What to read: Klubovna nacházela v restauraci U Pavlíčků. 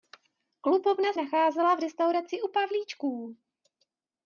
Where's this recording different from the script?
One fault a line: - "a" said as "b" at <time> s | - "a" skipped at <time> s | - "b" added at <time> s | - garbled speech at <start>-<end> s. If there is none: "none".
none